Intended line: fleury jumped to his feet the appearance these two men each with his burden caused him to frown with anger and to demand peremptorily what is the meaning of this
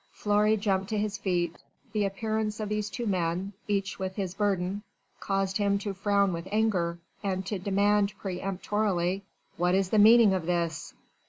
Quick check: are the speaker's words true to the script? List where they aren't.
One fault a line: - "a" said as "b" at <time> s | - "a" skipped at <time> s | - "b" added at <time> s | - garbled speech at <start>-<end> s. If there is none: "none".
- "of" added at 2.6 s